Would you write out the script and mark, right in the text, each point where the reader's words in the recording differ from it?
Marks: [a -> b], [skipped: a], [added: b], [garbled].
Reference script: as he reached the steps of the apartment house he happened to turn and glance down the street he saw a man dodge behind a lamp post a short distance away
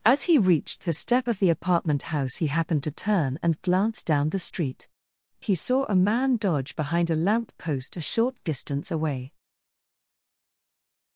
as he reached the [steps -> step] of the apartment house he happened to turn and glance down the street he saw a man dodge behind a lamp post a short distance away